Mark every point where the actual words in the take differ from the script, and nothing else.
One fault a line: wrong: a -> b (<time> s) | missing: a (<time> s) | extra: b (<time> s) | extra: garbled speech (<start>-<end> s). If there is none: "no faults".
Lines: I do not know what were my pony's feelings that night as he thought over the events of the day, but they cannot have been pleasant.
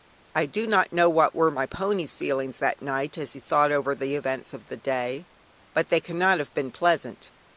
no faults